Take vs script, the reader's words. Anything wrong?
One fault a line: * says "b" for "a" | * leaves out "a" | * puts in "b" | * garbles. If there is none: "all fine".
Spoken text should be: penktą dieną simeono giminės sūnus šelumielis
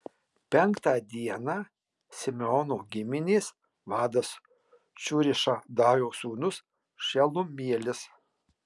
* puts in "vadas cūrišadajo"